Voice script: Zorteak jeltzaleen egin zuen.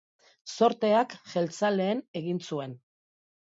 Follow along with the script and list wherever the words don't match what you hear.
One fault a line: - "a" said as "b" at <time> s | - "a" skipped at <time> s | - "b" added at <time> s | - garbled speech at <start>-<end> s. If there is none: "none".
none